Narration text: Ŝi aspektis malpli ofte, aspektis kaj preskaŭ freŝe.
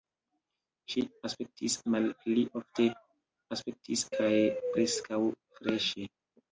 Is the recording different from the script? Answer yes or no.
no